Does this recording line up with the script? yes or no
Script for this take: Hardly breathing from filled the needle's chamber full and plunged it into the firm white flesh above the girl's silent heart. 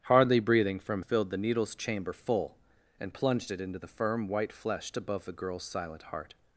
yes